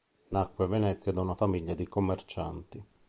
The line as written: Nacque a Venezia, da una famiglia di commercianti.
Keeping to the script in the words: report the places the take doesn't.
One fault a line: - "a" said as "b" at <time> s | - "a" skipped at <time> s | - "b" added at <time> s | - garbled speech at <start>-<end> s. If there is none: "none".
none